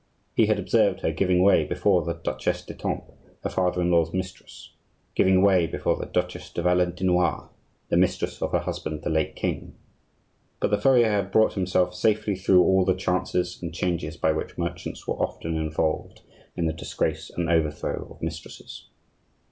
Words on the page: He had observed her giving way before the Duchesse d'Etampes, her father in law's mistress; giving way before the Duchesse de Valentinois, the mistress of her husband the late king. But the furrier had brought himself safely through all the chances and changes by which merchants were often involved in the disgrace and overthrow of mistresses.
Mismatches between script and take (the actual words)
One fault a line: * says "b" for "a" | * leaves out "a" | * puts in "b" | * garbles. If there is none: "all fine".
all fine